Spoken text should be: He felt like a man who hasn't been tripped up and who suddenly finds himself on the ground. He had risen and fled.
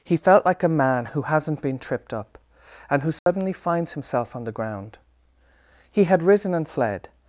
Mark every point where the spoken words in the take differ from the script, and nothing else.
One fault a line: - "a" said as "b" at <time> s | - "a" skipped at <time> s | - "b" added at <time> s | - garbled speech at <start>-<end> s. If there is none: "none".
none